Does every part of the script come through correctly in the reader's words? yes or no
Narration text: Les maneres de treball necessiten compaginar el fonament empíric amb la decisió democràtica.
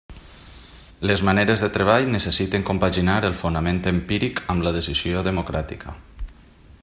yes